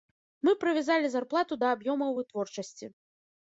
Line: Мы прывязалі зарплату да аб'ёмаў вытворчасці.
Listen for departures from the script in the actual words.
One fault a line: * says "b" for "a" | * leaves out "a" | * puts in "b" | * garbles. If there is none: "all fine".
all fine